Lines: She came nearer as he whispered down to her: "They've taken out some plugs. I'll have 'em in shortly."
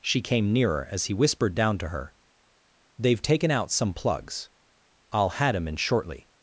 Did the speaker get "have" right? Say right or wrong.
wrong